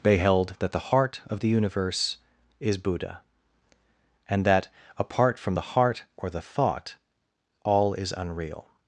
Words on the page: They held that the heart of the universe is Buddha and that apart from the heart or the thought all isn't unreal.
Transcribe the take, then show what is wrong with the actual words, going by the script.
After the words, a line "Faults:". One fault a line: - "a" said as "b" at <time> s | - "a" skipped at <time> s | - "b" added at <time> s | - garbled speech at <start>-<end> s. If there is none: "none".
They held that the heart of the universe is Buddha and that apart from the heart or the thought all is unreal.
Faults:
- "isn't" said as "is" at 7.9 s